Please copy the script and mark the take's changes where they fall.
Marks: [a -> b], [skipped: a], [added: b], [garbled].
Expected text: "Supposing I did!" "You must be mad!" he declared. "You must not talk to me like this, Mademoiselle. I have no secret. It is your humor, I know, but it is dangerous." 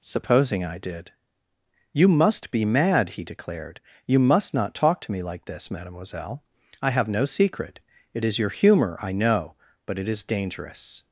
"Supposing I did!" "You must be mad!" he declared. "You must not talk to me like this, Mademoiselle. I have no secret. It is your humor, I know, but it is dangerous."